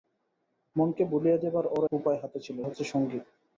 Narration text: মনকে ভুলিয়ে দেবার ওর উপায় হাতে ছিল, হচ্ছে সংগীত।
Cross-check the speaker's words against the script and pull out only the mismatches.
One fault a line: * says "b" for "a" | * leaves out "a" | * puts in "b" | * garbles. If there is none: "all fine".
all fine